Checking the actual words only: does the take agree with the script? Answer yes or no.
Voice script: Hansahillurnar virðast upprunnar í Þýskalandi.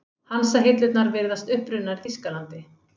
yes